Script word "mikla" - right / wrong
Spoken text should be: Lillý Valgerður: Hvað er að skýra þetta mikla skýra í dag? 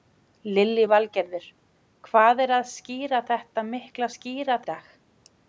right